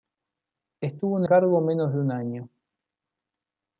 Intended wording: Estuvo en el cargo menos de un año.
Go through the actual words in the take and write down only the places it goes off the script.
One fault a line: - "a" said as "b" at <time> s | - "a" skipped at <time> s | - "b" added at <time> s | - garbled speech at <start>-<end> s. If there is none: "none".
- "el" skipped at 1.3 s